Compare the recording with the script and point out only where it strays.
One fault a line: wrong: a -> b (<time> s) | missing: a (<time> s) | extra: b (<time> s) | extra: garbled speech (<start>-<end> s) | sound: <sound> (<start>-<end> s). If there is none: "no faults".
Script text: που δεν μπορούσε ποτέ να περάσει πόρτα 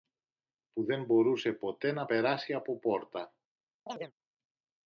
extra: από (2.5 s)
sound: chirp (3.9-4.1 s)